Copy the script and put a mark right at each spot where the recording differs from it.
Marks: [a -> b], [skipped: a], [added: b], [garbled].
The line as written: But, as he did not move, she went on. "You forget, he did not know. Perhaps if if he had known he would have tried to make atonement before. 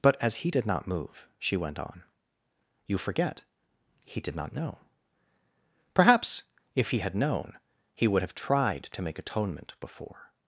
But, as he did not move, she went on. "You forget, he did not know. Perhaps if [skipped: if] he had known he would have tried to make atonement before.